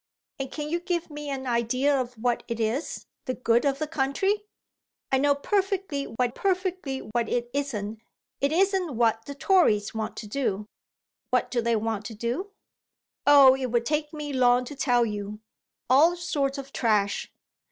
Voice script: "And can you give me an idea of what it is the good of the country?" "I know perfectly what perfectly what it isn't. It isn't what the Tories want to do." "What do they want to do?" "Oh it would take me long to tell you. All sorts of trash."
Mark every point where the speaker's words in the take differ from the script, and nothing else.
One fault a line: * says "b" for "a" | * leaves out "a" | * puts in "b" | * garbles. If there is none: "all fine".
all fine